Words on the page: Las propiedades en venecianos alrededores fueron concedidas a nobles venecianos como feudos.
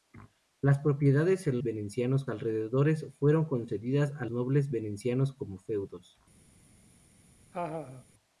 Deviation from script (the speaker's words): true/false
false